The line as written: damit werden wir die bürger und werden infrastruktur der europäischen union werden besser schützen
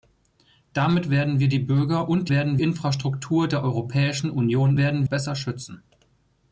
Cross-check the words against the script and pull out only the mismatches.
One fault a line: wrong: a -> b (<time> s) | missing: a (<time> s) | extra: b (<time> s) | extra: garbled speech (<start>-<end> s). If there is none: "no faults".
no faults